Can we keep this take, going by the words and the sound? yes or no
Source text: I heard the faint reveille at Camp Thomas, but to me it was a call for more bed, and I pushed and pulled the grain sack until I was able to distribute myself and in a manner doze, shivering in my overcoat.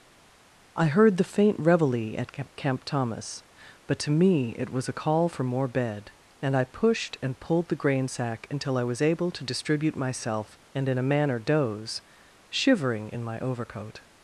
yes